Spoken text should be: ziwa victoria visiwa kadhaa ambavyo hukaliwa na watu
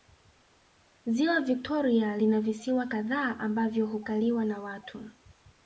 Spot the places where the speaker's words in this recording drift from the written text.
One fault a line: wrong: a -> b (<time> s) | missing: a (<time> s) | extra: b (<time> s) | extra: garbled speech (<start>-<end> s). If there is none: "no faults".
extra: lina (2.2 s)